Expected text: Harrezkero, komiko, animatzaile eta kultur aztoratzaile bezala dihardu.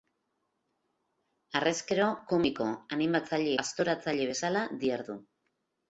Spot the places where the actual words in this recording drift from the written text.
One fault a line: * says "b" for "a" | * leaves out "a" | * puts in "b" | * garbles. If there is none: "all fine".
* leaves out "eta kultur"